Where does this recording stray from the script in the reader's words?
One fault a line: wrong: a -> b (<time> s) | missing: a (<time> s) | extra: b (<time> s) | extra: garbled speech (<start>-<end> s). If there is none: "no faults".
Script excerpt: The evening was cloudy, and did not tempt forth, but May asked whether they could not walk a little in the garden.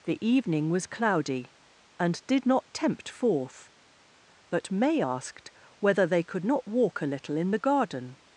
no faults